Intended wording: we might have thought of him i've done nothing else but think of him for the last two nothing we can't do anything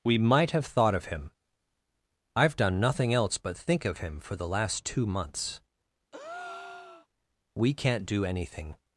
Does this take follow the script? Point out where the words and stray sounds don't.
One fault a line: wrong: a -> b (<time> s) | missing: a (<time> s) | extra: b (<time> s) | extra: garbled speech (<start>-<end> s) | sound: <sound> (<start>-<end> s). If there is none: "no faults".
wrong: nothing -> months (5.0 s)
sound: breath (6.1-7.1 s)